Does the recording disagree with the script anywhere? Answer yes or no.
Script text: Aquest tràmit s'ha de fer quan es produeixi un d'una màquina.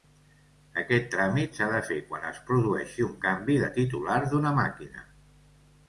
yes